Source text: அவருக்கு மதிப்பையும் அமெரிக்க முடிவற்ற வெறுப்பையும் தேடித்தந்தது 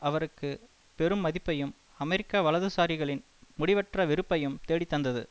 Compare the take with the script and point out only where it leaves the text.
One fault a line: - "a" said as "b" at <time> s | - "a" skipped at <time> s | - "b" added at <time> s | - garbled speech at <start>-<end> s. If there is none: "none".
- "பெரும்" added at 1.0 s
- "வலதுசாரிகளின்" added at 2.4 s